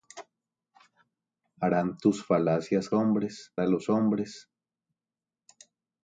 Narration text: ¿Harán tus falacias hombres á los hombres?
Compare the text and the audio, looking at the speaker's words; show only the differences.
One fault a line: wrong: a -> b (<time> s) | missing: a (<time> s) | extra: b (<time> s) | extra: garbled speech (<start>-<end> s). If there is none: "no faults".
no faults